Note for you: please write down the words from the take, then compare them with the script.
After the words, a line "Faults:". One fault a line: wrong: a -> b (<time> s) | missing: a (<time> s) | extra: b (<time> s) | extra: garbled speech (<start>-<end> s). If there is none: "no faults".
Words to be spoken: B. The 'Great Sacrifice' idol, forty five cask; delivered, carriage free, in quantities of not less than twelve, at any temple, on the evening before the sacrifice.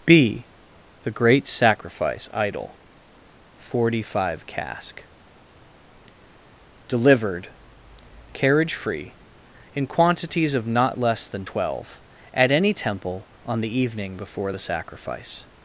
B. The 'Great Sacrifice' idol, forty five cask; delivered, carriage free, in quantities of not less than twelve, at any temple, on the evening before the sacrifice.
Faults:
no faults